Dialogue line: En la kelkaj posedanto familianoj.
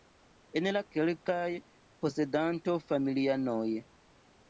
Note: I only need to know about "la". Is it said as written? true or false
true